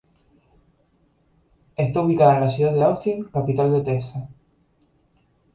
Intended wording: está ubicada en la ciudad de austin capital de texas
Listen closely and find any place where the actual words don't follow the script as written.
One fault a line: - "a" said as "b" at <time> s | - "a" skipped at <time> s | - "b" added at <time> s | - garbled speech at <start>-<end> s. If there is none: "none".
none